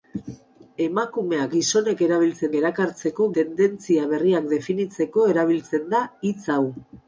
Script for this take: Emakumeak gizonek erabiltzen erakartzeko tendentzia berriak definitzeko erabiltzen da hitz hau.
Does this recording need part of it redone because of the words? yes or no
no